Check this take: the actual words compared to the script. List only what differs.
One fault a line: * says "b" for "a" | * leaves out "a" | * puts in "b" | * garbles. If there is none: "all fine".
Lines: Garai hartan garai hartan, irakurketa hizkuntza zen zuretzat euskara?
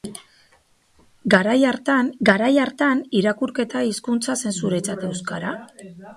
all fine